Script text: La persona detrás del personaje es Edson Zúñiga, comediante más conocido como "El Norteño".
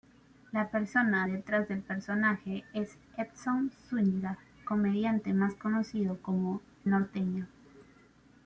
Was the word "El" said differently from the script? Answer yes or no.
yes